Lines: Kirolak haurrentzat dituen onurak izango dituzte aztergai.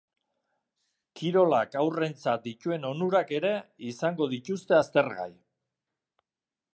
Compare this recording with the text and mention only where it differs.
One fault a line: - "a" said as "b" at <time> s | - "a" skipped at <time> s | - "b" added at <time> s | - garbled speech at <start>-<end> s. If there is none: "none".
- "ere" added at 3.4 s